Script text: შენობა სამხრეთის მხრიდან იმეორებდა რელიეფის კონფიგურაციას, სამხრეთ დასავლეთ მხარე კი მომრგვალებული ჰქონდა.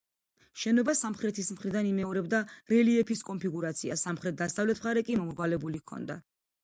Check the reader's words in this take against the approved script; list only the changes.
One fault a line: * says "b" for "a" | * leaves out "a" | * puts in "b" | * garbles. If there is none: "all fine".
all fine